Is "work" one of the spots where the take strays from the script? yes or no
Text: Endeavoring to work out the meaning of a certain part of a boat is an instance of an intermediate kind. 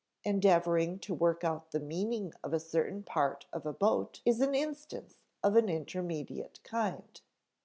no